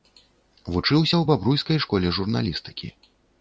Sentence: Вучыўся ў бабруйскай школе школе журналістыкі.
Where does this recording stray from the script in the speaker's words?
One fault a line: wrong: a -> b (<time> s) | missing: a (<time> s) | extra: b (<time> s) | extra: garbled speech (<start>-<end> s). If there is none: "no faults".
missing: школе (2.1 s)